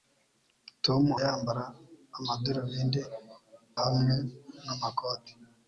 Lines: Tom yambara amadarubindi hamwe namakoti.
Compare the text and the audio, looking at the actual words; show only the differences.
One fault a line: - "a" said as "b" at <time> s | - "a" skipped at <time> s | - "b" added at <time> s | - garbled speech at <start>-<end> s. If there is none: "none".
none